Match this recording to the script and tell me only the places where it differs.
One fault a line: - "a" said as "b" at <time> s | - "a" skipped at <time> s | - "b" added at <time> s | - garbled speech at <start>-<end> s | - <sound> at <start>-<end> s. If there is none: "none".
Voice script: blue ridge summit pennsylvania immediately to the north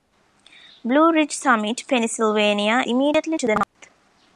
- dropout at 3.6-3.8 s